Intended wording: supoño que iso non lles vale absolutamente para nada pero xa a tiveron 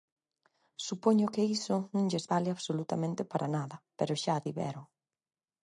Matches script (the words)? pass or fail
pass